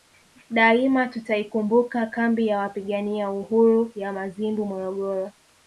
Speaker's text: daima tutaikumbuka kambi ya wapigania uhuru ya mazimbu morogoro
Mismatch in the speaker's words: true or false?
false